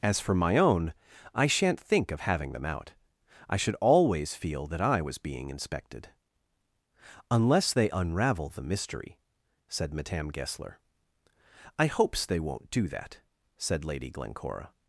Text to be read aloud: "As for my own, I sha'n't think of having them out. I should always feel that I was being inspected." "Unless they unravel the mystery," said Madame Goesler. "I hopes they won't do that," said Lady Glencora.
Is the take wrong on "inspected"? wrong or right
right